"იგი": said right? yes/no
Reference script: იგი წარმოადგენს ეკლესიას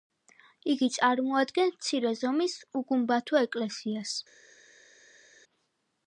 yes